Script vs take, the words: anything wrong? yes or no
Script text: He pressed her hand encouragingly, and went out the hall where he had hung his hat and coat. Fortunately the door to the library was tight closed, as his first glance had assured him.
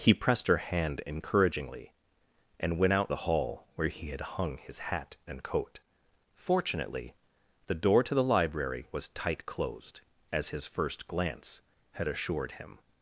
no